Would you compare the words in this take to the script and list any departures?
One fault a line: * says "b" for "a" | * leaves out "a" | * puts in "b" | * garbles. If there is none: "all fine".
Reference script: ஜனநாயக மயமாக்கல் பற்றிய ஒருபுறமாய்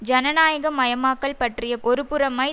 all fine